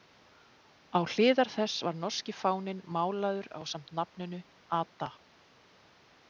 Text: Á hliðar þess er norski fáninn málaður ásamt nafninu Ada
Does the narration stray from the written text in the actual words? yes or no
yes